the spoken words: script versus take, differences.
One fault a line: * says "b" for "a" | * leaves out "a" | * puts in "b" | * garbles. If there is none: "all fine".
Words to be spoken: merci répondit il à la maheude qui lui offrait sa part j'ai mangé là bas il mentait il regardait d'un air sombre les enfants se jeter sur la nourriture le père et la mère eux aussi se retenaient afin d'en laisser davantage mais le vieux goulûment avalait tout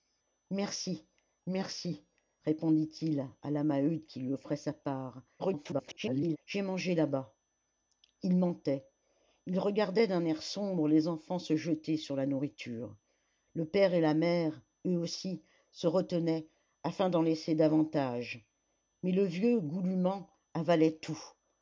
* puts in "merci"
* garbles